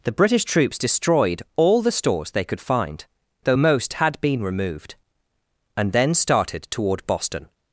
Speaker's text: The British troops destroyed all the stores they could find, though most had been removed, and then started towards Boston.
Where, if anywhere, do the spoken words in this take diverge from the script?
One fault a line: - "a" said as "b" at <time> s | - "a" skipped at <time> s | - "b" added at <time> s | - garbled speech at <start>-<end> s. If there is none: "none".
- "towards" said as "toward" at 6.7 s